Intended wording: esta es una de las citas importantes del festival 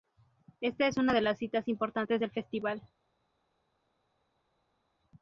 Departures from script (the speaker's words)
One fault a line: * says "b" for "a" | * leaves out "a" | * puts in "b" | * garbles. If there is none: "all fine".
all fine